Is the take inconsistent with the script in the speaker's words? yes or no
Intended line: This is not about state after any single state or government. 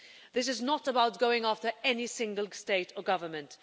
yes